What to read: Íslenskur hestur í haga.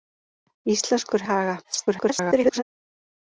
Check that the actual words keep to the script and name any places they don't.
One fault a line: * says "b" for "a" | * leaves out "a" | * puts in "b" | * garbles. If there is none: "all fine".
* leaves out "hestur"
* garbles